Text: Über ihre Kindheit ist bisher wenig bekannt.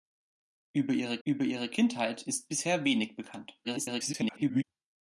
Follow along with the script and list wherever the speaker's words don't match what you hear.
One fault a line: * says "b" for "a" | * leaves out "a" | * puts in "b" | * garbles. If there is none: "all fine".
* puts in "über ihre"
* garbles